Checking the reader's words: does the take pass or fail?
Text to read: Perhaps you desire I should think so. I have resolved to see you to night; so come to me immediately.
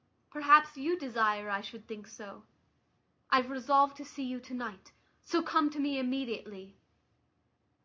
pass